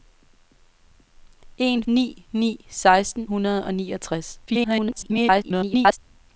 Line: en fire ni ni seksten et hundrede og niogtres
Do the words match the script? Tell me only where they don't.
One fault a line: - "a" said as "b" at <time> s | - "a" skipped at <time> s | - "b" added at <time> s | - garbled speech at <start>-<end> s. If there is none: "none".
- "fire" skipped at 1.8 s
- "et" skipped at 3.3 s
- garbled speech at 4.5-6.0 s